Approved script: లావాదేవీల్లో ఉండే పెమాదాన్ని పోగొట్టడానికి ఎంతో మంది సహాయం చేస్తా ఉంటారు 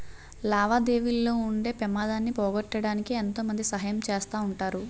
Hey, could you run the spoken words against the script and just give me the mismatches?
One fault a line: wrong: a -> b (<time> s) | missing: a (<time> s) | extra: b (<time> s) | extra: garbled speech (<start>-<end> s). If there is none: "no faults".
no faults